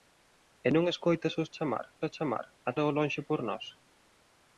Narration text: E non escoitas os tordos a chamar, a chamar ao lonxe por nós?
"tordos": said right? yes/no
no